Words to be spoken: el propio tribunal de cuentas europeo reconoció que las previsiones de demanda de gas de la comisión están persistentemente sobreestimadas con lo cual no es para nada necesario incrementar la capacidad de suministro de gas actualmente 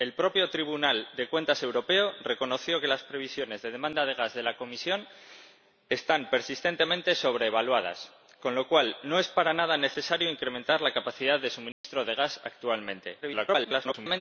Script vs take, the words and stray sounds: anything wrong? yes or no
yes